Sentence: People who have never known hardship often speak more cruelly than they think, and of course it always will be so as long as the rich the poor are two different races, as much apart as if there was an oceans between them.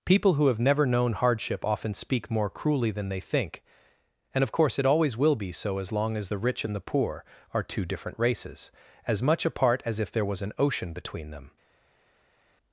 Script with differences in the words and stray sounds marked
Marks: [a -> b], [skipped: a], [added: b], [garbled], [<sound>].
People who have never known hardship often speak more cruelly than they think, and of course it always will be so as long as the rich [added: and] the poor are two different races, as much apart as if there was an [oceans -> ocean] between them.